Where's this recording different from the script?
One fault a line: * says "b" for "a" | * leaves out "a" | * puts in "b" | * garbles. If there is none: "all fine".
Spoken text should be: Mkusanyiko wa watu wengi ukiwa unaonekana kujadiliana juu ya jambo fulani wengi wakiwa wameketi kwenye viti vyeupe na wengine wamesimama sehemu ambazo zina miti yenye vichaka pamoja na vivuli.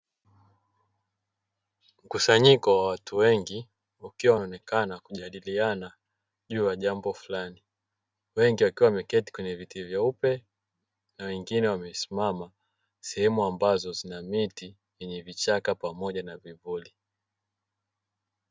all fine